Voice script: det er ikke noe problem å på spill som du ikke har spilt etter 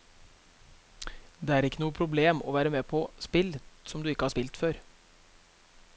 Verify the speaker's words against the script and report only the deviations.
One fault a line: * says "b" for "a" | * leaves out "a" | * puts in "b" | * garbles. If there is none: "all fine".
* puts in "være med"
* says "før" for "etter"